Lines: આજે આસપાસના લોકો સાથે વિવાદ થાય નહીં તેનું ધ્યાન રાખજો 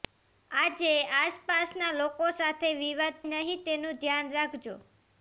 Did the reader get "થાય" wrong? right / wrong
wrong